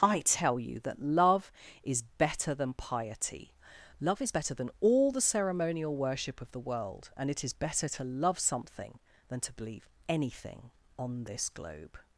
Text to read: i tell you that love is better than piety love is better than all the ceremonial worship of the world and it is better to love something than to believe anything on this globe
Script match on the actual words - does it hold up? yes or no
yes